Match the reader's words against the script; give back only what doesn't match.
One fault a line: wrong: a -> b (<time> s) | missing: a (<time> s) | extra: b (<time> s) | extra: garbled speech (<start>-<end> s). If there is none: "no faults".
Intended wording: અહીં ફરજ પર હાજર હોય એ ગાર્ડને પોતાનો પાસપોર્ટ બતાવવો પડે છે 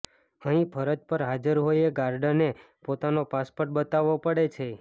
no faults